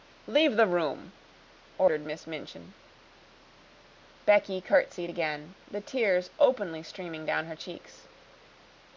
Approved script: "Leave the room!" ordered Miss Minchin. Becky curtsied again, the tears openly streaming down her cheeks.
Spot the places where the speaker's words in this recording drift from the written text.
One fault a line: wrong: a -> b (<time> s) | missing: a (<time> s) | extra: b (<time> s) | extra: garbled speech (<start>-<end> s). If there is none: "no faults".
no faults